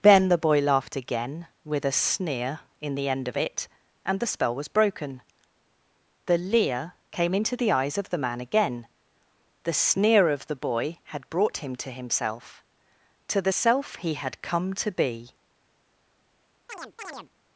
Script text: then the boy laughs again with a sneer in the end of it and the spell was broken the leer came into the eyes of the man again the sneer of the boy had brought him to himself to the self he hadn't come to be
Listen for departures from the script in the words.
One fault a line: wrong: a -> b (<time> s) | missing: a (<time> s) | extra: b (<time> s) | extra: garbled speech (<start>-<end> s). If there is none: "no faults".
wrong: laughs -> laughed (0.6 s)
wrong: hadn't -> had (14.1 s)